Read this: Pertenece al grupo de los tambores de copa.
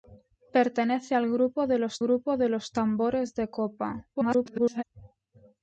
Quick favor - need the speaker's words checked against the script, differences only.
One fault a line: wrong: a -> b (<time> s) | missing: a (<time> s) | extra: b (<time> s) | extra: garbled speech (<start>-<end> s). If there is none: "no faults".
extra: grupo de los (2.0 s)
extra: garbled speech (4.1-4.8 s)